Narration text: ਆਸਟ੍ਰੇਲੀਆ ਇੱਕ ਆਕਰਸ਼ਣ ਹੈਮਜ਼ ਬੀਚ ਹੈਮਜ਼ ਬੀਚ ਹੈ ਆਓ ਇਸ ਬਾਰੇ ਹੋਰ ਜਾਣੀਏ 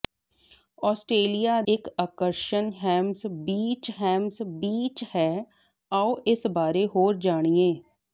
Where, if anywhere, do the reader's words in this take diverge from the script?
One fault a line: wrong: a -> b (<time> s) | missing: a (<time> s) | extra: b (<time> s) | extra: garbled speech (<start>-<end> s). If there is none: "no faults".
no faults